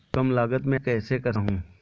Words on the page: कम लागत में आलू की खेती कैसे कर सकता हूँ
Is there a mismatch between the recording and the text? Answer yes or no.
yes